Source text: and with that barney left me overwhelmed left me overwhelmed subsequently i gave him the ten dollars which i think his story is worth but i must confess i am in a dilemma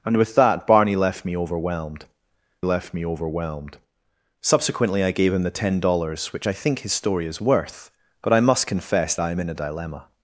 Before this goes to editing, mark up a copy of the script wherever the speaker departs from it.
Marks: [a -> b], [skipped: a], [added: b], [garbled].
and with that barney left me overwhelmed left me overwhelmed subsequently i gave him the ten dollars which i think his story is worth but i must confess i am in a dilemma